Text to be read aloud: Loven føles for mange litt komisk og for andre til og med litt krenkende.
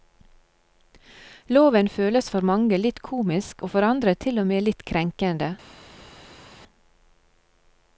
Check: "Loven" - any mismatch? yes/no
no